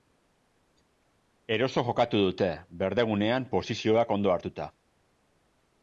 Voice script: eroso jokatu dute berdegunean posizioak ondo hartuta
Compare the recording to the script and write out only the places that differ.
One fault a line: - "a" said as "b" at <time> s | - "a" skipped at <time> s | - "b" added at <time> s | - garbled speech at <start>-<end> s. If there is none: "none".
none